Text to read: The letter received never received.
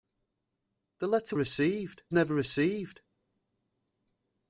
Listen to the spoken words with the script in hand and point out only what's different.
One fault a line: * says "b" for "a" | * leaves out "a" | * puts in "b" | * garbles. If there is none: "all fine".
all fine